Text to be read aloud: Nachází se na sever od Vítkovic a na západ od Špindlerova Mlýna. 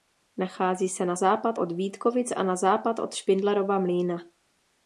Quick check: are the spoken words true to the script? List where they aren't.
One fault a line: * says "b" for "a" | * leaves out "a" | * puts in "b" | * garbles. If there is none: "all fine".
* says "západ" for "sever"